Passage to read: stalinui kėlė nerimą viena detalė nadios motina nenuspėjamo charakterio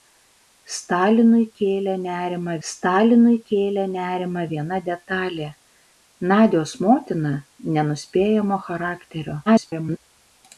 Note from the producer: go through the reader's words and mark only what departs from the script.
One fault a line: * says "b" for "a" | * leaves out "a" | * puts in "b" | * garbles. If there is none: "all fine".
* puts in "stalinui kėlė nerimą"
* garbles